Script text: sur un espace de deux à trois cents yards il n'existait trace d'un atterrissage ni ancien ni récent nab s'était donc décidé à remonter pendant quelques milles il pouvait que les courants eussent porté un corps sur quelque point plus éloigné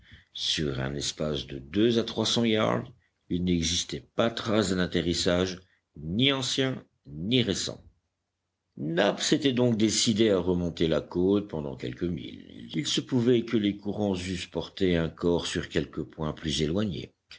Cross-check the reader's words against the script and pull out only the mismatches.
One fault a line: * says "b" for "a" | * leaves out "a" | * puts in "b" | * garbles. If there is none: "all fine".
* puts in "pas"
* puts in "la côte"
* puts in "se"